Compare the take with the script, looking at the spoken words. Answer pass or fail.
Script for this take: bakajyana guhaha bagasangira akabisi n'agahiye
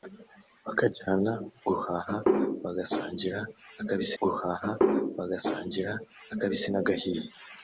fail